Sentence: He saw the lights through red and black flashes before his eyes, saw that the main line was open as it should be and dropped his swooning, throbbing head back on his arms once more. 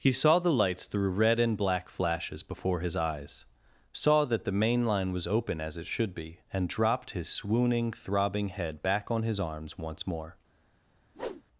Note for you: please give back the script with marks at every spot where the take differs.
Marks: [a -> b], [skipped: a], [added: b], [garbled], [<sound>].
He saw the lights through red and black flashes before his eyes, saw that the main line was open as it should be and dropped his swooning, throbbing head back on his arms once more. [whoosh]